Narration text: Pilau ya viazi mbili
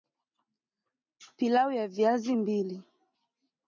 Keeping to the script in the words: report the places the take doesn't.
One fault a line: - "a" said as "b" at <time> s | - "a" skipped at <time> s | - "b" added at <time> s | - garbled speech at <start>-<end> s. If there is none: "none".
none